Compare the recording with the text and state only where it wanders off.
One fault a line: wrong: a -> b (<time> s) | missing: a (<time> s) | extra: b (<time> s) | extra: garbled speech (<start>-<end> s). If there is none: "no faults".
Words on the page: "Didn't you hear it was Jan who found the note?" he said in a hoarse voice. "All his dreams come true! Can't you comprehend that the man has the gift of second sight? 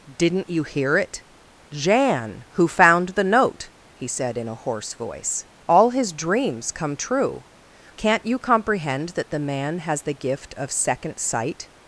missing: was (1.2 s)